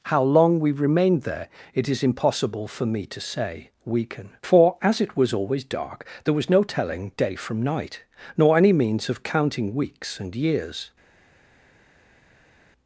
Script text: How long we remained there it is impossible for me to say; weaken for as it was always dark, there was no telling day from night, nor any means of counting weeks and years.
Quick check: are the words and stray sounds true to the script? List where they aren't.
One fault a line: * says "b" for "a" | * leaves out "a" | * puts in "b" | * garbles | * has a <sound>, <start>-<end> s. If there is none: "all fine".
all fine